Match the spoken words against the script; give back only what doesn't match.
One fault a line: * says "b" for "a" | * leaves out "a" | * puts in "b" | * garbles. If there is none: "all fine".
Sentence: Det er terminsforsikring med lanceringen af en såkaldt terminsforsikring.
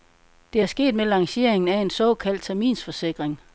* says "sket" for "terminsforsikring"